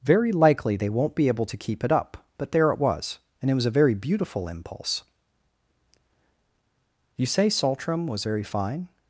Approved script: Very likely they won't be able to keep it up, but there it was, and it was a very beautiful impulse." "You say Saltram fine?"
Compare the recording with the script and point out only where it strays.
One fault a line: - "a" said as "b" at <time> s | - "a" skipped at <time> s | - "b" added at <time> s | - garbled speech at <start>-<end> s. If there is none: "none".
- "was very" added at 8.1 s